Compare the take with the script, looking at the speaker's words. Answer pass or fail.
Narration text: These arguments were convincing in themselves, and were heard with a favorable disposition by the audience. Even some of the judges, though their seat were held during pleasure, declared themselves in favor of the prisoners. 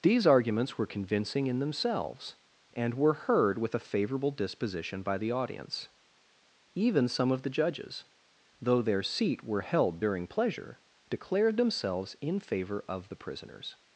pass